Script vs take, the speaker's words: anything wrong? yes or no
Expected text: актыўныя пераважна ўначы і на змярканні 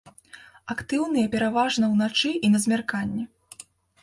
no